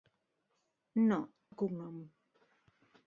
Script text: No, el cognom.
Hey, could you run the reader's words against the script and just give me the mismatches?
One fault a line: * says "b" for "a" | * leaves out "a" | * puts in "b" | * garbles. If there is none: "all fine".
all fine